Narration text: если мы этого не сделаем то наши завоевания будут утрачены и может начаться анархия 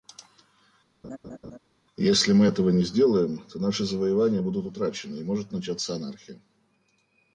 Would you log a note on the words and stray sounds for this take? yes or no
yes